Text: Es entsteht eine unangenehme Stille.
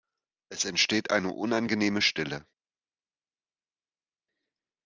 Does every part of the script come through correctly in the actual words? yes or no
yes